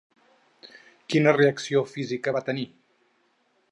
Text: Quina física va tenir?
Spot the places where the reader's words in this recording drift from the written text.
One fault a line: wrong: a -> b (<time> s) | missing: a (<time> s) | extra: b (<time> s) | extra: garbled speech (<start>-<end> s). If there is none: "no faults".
extra: reacció (1.4 s)